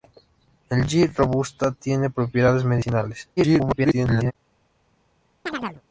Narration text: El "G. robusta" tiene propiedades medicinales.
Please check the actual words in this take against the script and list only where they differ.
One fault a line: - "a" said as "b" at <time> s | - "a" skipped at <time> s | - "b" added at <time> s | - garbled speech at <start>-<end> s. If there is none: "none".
- garbled speech at 3.4-4.3 s